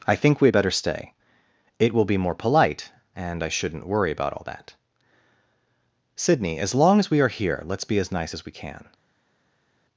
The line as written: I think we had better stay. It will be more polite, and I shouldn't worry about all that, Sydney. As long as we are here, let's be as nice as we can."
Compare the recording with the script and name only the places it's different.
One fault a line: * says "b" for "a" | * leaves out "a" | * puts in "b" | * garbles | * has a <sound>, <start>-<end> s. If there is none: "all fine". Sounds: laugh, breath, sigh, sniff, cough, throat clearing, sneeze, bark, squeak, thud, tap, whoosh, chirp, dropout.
all fine